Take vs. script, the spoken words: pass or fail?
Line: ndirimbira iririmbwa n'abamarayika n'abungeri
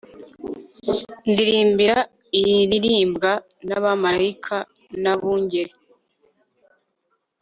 pass